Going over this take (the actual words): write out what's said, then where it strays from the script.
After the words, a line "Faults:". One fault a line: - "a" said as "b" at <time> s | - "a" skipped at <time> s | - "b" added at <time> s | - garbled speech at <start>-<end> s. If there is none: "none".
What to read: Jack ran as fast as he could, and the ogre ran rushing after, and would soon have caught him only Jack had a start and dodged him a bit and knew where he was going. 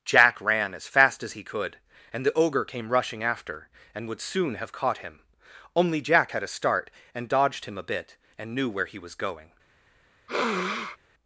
Jack ran as fast as he could, and the ogre came rushing after, and would soon have caught him only Jack had a start and dodged him a bit and knew where he was going.
Faults:
- "ran" said as "came" at 2.6 s